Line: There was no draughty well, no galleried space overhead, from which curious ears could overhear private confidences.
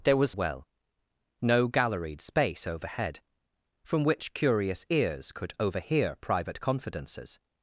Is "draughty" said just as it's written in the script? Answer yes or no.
no